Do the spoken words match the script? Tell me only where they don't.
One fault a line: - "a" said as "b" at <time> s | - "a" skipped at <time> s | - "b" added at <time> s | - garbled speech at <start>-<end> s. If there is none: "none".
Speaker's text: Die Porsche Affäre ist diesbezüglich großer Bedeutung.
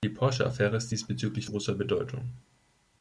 none